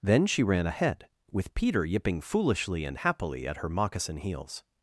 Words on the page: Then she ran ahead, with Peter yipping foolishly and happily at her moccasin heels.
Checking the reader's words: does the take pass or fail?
pass